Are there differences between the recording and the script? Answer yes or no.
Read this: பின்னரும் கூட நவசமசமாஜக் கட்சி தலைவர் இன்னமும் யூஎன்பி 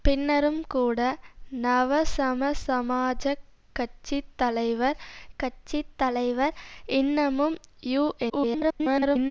yes